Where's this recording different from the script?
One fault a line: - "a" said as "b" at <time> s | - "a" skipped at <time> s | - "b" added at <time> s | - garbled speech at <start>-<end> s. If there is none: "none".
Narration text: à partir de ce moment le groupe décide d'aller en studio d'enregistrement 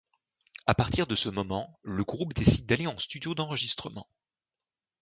none